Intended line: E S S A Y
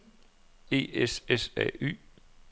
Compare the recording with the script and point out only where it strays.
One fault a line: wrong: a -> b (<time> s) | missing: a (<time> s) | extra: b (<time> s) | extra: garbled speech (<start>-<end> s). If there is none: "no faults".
no faults